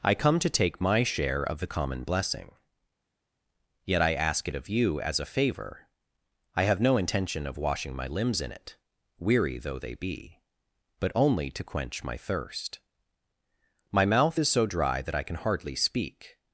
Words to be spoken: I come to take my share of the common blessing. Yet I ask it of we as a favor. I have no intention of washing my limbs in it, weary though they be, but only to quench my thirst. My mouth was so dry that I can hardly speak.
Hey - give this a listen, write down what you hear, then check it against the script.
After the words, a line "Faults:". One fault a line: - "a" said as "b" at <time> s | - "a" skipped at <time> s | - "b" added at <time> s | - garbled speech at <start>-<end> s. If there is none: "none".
I come to take my share of the common blessing. Yet I ask it of you as a favor. I have no intention of washing my limbs in it, weary though they be, but only to quench my thirst. My mouth is so dry that I can hardly speak.
Faults:
- "we" said as "you" at 4.7 s
- "was" said as "is" at 14.4 s